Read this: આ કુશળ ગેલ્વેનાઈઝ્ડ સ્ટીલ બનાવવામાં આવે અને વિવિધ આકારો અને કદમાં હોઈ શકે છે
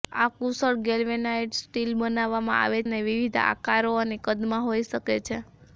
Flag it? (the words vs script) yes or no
no